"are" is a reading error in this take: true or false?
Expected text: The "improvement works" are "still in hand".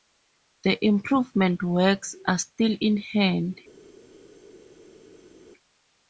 false